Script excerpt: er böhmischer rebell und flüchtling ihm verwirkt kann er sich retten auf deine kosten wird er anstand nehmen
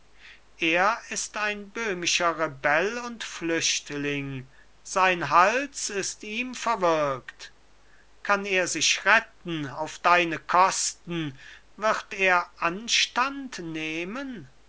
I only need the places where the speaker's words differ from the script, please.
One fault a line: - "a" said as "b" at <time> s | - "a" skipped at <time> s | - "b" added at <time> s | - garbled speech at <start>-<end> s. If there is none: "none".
- "ist ein" added at 1.1 s
- "sein hals ist" added at 4.8 s